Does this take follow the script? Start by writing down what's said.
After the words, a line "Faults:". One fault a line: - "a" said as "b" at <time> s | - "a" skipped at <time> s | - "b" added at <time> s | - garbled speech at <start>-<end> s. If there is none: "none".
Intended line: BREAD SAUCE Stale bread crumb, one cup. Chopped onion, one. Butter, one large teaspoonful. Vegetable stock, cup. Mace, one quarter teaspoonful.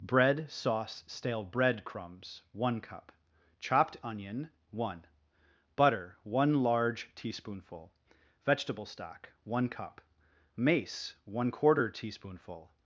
BREAD SAUCE Stale bread crumbs, one cup. Chopped onion, one. Butter, one large teaspoonful. Vegetable stock, one cup. Mace, one quarter teaspoonful.
Faults:
- "crumb" said as "crumbs" at 1.8 s
- "one" added at 9.4 s